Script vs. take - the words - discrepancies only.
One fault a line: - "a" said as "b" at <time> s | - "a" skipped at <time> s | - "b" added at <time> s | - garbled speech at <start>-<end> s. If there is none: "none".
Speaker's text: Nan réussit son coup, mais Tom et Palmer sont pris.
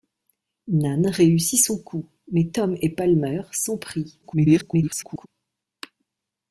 - garbled speech at 4.2-5.3 s